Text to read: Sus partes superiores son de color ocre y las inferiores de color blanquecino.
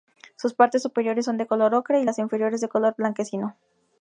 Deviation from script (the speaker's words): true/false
false